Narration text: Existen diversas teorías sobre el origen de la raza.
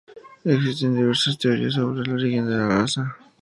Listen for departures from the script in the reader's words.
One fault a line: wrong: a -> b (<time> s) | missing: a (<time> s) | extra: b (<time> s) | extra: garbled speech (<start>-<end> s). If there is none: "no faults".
no faults